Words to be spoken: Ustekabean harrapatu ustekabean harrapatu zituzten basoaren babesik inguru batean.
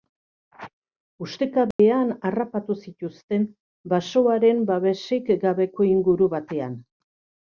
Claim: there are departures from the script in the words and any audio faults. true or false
true